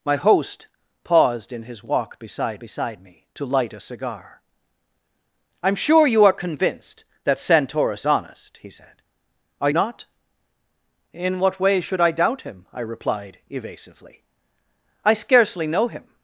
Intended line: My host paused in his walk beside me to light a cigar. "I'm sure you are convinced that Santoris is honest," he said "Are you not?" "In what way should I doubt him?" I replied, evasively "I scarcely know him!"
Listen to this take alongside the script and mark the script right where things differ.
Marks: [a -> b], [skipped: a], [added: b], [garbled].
My host paused in his walk beside [added: beside] me to light a cigar. "I'm sure you are convinced that Santoris [skipped: is] honest," he said "Are [skipped: you] not?" "In what way should I doubt him?" I replied, evasively "I scarcely know him!"